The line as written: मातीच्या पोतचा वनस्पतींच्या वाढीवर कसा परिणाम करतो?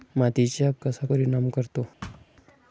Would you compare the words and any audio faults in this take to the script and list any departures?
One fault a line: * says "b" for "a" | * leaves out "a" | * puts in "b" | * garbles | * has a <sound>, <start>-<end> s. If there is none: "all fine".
* leaves out "पोतचा वनस्पतींच्या वाढीवर"
* has a thud, 2.0-2.3 s